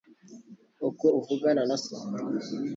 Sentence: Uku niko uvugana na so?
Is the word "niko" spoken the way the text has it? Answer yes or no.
no